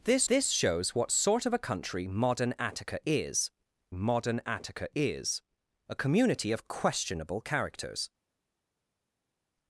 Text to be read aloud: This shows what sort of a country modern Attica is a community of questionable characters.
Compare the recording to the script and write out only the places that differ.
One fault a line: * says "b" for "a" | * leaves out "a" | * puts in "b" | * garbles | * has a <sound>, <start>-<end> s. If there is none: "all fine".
* puts in "this"
* puts in "modern Attica is"